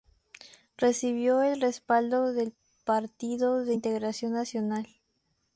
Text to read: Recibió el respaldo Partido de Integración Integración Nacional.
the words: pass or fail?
fail